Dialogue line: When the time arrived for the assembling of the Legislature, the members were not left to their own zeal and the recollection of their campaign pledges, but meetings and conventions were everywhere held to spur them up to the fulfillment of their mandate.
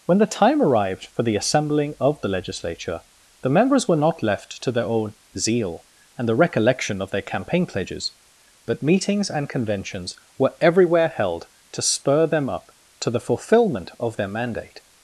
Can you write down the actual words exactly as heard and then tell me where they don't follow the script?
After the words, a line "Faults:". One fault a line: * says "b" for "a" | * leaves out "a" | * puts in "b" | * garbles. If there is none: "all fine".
When the time arrived for the assembling of the Legislature, the members were not left to their own zeal and the recollection of their campaign pledges, but meetings and conventions were everywhere held to spur them up to the fulfillment of their mandate.
Faults:
all fine